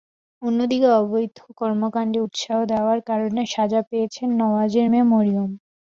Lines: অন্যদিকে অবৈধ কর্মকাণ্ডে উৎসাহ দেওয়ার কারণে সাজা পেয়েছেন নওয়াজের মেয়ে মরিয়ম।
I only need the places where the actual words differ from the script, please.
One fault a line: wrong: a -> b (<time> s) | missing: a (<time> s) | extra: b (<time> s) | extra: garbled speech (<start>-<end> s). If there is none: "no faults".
no faults